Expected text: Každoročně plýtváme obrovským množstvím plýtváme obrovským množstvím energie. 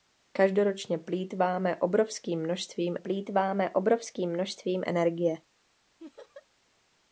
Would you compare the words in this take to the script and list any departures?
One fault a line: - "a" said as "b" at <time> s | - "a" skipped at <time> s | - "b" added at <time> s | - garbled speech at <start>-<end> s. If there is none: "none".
none